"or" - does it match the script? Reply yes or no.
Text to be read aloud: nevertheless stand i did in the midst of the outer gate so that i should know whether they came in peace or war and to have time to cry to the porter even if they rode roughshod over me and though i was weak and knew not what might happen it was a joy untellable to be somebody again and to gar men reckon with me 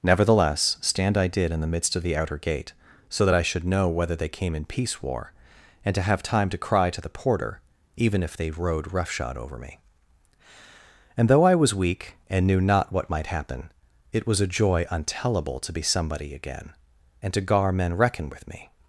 no